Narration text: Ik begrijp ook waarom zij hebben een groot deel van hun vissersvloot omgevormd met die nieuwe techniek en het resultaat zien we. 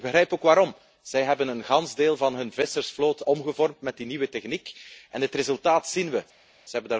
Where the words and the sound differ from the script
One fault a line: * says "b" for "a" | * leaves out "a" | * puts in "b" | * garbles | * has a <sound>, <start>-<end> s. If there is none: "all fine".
all fine